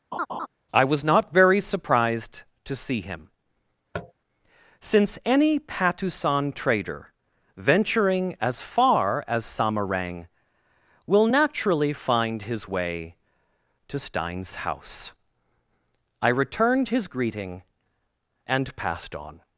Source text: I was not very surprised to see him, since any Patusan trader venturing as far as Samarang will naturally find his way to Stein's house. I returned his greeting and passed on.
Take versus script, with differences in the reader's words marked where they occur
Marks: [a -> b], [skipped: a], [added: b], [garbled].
I was not very surprised to see him, since any Patusan trader venturing as far as Samarang will naturally find his way to Stein's house. I returned his greeting and passed on.